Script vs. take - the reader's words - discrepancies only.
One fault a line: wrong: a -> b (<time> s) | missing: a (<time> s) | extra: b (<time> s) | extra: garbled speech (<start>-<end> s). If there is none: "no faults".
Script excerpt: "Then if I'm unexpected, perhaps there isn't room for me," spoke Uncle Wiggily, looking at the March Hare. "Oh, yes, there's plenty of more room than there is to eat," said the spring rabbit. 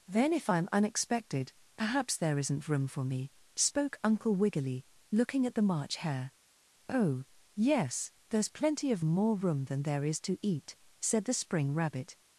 no faults